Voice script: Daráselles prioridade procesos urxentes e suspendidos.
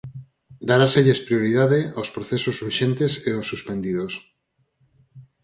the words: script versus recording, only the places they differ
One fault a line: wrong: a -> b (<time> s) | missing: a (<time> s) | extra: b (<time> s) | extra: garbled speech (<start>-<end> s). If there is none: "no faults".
extra: aos (2.0 s)
extra: aos (3.3 s)